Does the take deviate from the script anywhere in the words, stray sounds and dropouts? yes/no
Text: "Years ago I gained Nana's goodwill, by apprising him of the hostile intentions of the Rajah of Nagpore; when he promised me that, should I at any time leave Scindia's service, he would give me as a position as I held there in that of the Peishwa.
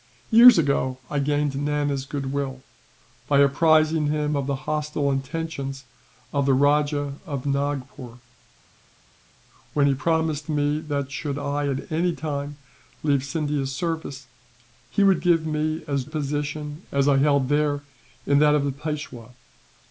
no